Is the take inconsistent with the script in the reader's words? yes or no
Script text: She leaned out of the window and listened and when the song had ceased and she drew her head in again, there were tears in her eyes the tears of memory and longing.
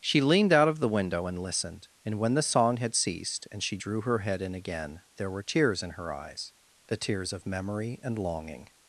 no